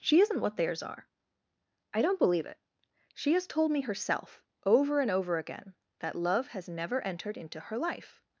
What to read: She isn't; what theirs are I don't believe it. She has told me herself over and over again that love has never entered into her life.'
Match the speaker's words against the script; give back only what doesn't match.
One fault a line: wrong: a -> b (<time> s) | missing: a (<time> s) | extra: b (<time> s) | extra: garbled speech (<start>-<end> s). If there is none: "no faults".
no faults